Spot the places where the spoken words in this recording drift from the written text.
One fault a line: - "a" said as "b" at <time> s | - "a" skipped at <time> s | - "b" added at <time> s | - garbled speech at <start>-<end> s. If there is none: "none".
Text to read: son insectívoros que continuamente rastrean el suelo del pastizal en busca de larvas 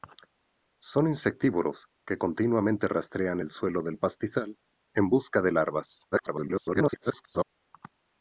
- garbled speech at 6.1-7.4 s